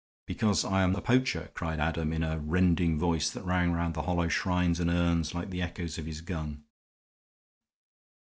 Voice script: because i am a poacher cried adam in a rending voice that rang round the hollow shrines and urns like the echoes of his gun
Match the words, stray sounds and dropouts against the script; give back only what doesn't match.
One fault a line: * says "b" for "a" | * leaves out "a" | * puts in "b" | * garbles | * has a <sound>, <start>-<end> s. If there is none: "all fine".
all fine